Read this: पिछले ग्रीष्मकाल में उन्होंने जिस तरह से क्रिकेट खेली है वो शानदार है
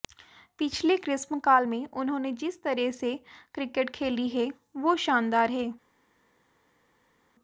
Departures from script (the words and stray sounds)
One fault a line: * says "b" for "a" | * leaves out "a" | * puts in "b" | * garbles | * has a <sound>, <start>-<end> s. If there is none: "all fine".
all fine